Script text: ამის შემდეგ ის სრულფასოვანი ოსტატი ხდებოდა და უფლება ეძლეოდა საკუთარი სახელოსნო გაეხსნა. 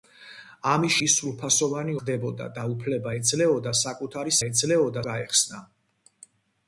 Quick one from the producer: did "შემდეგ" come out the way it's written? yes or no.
no